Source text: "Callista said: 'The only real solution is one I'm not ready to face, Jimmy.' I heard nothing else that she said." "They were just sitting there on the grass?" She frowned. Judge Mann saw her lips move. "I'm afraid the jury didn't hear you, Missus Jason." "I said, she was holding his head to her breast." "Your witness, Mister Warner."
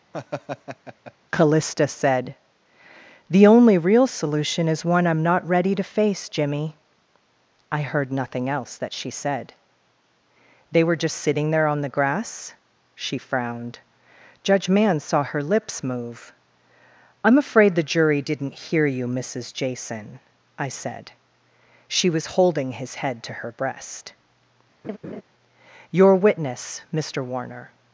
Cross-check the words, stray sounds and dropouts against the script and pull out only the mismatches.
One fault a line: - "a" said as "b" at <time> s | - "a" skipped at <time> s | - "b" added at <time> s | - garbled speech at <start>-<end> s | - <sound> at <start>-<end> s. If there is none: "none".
- laugh at 0.1-1.1 s
- laugh at 24.8-25.2 s